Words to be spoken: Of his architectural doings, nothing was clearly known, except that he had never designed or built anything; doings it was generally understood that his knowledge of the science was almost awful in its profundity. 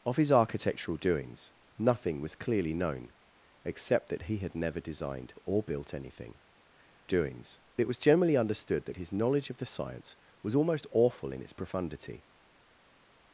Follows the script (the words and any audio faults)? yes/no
yes